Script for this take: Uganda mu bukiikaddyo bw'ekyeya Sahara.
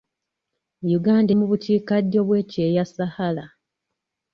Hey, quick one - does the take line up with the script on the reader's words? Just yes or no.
yes